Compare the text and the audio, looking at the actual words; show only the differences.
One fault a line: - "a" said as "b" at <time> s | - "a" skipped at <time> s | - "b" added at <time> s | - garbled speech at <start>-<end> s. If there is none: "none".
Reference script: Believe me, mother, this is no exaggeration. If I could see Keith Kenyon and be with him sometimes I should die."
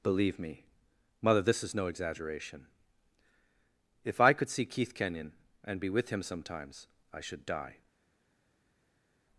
none